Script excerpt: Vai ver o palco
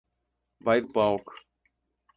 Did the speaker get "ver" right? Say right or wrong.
wrong